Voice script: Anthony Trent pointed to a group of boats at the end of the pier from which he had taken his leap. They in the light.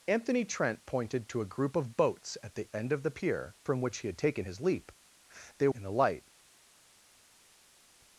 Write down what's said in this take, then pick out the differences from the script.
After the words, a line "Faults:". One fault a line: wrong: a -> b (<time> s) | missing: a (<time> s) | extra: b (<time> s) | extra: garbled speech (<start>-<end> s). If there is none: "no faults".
Anthony Trent pointed to a group of boats at the end of the pier from which he had taken his leap. They in the light.
Faults:
no faults